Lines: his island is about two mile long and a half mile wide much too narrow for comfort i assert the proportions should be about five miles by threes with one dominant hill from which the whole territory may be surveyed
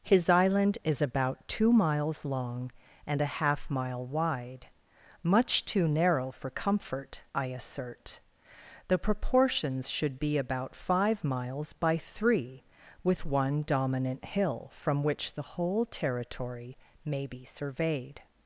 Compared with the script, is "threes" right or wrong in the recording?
wrong